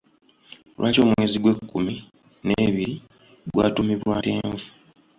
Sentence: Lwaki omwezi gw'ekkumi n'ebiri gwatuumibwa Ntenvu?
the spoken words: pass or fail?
pass